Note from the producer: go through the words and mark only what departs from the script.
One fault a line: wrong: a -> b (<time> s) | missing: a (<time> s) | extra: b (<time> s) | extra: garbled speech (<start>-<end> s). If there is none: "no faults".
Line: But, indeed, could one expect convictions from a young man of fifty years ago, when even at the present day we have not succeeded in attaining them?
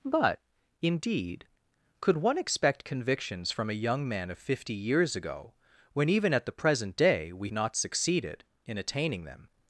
missing: have (7.5 s)